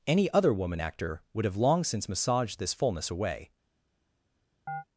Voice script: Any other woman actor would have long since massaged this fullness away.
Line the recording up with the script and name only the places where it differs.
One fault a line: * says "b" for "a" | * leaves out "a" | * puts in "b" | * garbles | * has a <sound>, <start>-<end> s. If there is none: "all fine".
* has a chirp, 4.7-4.8 s